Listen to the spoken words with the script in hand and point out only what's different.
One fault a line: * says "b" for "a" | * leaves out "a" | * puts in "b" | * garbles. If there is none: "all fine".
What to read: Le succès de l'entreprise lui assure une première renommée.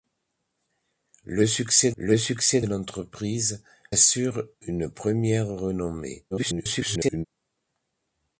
* puts in "le succès"
* leaves out "lui"
* garbles